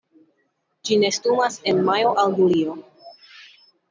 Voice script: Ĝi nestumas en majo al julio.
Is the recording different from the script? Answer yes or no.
no